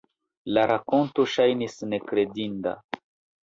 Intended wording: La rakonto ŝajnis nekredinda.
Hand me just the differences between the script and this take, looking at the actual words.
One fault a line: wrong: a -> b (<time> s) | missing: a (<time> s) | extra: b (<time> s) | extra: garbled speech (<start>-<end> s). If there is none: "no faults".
no faults